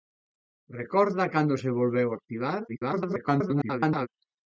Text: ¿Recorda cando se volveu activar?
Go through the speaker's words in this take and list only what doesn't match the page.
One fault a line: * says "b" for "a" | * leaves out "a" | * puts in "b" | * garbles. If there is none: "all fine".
* garbles